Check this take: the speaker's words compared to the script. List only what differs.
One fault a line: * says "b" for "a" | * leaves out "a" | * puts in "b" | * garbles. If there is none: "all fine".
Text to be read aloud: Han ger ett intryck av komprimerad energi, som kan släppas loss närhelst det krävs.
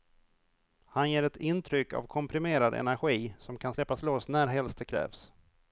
all fine